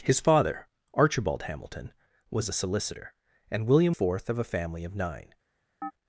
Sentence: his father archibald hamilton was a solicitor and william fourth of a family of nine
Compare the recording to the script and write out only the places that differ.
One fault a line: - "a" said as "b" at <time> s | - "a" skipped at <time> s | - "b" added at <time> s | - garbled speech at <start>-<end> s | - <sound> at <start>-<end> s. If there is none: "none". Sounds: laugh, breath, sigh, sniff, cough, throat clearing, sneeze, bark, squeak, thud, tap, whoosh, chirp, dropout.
- chirp at 5.8-5.9 s